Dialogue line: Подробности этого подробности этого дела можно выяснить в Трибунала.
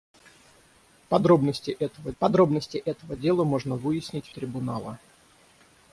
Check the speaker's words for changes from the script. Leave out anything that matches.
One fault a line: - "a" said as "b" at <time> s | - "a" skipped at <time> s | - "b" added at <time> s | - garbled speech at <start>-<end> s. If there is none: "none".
none